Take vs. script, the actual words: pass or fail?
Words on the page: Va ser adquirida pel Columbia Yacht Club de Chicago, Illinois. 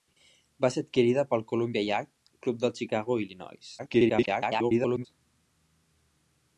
fail